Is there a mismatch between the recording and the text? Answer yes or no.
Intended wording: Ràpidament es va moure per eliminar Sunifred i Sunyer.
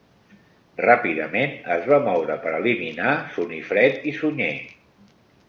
no